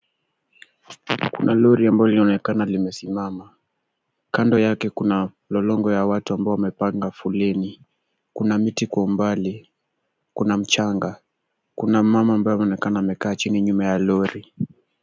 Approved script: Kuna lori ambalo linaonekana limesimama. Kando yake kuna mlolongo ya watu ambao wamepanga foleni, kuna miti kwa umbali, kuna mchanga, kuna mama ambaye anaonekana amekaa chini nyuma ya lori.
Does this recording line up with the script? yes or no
yes